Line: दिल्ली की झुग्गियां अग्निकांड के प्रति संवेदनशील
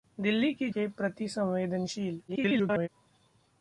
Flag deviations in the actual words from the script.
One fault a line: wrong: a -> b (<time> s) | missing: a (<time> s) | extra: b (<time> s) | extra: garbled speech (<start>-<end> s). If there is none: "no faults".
missing: झुग्गियां अग्निकांड (0.7 s)
extra: garbled speech (2.3-2.9 s)